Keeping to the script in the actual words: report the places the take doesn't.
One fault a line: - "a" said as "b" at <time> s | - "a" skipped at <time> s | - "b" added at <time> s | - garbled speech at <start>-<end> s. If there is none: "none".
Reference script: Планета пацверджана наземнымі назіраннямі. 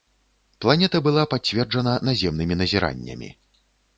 - "была" added at 1.1 s